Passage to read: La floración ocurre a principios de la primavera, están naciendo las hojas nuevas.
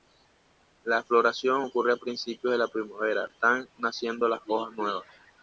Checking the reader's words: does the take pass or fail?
pass